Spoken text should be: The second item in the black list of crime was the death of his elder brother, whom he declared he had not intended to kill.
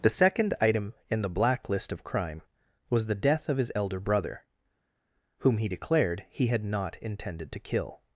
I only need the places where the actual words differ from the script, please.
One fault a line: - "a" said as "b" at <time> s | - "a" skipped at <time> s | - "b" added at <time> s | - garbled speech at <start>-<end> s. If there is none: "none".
none